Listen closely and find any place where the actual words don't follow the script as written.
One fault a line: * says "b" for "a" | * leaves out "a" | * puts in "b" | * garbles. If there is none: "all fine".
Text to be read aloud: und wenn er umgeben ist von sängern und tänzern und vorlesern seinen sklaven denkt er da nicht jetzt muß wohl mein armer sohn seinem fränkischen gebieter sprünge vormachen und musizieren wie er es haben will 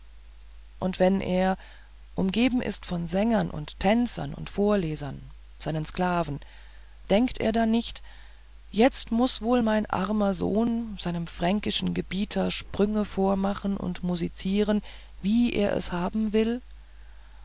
all fine